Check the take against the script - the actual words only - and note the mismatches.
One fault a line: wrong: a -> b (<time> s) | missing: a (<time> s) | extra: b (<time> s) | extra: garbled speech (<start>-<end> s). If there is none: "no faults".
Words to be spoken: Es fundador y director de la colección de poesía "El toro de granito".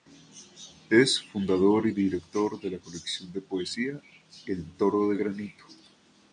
no faults